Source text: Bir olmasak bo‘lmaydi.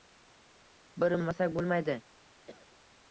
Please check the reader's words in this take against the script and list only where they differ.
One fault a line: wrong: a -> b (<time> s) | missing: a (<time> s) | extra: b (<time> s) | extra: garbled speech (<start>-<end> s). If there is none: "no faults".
no faults